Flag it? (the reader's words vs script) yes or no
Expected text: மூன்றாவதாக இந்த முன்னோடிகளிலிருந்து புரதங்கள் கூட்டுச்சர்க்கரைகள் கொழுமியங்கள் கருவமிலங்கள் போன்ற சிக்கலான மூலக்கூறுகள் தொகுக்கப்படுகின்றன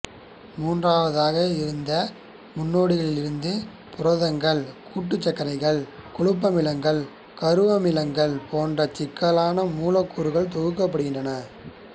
no